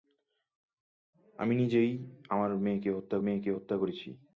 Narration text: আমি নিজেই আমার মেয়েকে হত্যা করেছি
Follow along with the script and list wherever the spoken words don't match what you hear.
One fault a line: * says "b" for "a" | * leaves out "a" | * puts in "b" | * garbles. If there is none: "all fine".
* puts in "মেয়েকে হত্যা"